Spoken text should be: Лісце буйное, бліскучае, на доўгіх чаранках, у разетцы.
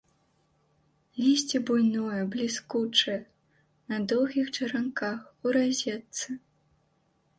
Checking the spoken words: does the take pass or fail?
pass